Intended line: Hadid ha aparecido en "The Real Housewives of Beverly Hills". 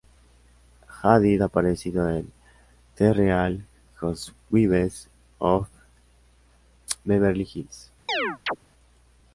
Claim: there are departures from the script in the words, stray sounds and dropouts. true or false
true